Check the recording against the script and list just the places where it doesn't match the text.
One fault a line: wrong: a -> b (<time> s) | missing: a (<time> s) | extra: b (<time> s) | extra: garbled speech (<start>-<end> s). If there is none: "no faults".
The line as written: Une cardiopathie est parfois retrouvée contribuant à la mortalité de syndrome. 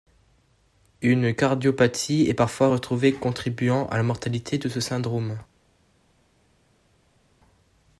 extra: ce (4.7 s)